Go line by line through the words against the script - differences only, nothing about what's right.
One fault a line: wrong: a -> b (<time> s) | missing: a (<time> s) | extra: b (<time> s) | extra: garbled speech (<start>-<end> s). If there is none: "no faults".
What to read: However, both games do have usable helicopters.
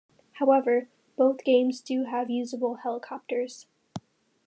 no faults